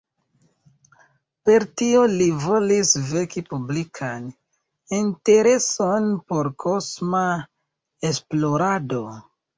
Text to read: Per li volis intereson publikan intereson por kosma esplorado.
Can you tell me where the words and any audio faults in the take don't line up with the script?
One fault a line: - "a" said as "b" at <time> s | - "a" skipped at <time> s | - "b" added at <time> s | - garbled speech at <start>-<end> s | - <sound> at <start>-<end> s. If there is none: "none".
- "tio" added at 1.8 s
- "intereson" said as "veki" at 3.1 s